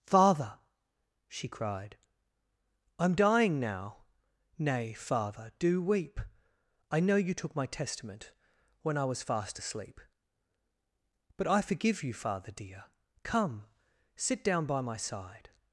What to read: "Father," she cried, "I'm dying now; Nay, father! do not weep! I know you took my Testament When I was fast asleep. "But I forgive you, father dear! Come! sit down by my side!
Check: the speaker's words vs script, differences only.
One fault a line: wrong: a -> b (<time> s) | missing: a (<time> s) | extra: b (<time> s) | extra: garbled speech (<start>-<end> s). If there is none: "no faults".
missing: not (5.8 s)